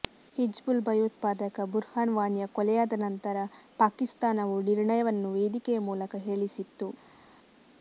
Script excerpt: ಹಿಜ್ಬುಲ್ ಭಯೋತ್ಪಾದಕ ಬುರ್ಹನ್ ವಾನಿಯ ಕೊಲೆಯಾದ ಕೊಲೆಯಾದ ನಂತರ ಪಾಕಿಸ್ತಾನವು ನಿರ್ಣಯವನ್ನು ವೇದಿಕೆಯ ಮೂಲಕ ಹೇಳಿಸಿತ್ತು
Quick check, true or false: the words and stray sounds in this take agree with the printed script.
false